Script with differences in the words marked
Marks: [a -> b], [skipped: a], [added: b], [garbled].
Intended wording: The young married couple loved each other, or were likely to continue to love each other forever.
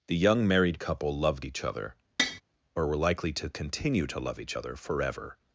The young married couple loved each other, or were likely to continue to love each other forever.